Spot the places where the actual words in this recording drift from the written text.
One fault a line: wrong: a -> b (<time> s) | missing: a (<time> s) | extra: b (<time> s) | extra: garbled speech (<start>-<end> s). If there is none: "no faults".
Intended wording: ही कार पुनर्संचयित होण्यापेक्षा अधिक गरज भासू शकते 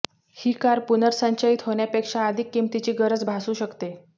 extra: किमतीची (2.5 s)